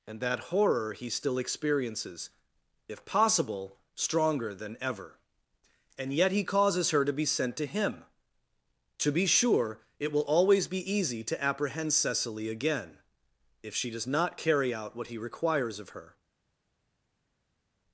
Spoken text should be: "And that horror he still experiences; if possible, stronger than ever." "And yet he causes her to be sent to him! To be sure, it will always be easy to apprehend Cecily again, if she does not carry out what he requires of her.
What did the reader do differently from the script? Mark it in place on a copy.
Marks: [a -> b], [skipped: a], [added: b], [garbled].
"And that horror he still experiences; if possible, stronger than ever." "And yet he causes her to be sent to him! To be sure, it will always be easy to apprehend Cecily again, if she does not carry out what he requires of her.